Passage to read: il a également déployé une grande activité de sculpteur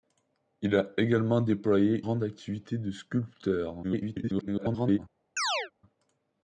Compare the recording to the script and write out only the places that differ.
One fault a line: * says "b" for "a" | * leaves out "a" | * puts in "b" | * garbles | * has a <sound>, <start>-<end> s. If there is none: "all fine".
* leaves out "une"
* garbles
* has a chirp, 5.4-5.7 s